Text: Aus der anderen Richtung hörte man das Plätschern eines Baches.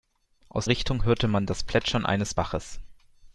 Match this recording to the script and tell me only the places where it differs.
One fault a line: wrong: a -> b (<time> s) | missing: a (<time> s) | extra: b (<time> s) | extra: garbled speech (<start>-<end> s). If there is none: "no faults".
missing: der anderen (0.7 s)